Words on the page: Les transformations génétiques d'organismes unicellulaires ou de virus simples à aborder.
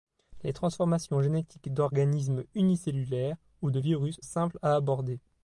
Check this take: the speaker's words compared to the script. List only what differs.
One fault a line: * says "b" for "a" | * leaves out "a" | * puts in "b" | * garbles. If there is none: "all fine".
all fine